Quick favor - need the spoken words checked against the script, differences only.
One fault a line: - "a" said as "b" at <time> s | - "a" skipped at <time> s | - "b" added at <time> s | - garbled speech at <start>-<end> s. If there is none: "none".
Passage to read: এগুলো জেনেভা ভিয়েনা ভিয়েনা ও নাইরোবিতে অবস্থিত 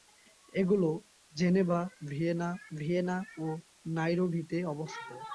none